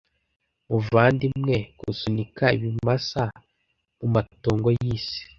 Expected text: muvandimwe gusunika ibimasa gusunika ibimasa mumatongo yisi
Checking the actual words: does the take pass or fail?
fail